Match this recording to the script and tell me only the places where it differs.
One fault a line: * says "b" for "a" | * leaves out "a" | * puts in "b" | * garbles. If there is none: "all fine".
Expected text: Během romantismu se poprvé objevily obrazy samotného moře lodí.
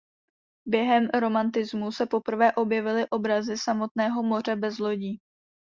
* puts in "bez"